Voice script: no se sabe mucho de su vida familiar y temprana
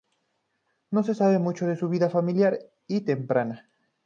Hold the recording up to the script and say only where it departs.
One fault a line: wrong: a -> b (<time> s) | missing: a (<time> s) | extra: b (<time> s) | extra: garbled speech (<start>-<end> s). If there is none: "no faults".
no faults